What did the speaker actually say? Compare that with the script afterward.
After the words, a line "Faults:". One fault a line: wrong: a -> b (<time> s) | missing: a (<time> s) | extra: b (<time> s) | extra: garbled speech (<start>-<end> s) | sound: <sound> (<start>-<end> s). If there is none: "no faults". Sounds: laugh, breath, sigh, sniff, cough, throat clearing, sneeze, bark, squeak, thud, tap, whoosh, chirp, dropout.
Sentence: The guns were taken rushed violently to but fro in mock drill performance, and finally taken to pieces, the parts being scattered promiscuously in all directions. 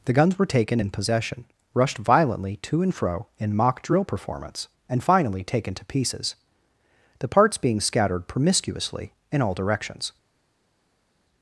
The guns were taken in possession, rushed violently to and fro in mock drill performance, and finally taken to pieces, the parts being scattered promiscuously in all directions.
Faults:
extra: in possession (0.8 s)
wrong: but -> and (2.8 s)